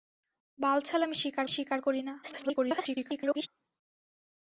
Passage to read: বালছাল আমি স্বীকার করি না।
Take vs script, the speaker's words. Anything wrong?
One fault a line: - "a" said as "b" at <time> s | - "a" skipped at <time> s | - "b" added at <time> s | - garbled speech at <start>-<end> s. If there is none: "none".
- "স্বীকার" added at 1.5 s
- garbled speech at 2.2-3.5 s